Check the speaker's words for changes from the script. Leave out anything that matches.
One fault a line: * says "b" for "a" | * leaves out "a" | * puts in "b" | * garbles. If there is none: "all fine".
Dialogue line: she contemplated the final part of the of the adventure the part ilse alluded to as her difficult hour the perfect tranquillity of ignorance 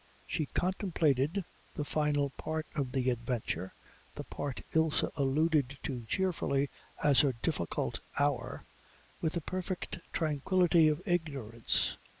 * leaves out "of the"
* puts in "cheerfully"
* puts in "with"